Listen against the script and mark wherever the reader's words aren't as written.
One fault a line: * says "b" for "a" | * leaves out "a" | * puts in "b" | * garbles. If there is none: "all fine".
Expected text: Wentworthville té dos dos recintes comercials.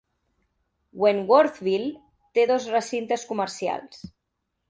* leaves out "dos"